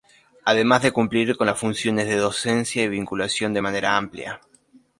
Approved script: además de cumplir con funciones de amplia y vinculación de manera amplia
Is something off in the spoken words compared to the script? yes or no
yes